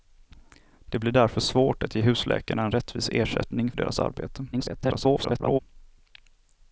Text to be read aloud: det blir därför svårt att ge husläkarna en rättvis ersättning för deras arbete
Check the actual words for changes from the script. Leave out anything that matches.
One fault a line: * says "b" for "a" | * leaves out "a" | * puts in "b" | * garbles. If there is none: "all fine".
* leaves out "för"
* garbles